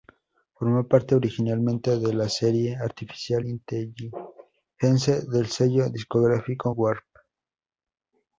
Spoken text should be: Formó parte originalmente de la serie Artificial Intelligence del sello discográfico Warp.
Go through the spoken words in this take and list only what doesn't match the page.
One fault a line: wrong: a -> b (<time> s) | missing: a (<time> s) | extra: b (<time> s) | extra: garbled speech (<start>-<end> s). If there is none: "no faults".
no faults